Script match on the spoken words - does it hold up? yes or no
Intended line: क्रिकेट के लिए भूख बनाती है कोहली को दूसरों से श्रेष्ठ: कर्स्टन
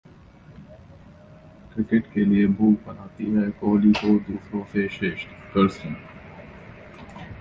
yes